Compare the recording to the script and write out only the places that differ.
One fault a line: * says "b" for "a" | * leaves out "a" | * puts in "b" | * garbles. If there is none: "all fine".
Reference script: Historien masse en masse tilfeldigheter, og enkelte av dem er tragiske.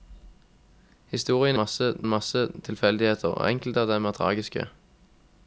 all fine